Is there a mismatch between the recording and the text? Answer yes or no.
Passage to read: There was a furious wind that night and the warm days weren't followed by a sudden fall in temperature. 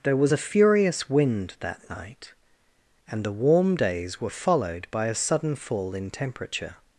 yes